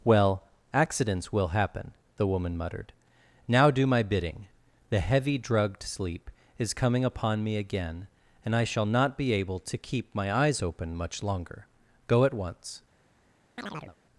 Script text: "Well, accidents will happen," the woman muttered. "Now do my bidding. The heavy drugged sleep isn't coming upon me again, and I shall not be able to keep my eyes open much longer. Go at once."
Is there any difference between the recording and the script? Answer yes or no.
yes